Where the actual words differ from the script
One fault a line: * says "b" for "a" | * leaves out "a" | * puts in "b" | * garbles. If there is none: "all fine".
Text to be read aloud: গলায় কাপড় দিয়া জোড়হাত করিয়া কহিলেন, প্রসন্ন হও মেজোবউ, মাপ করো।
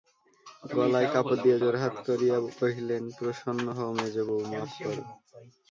all fine